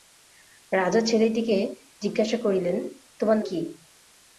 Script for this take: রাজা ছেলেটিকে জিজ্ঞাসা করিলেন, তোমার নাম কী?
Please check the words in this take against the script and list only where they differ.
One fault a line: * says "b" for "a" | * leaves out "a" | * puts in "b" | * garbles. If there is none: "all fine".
* leaves out "নাম"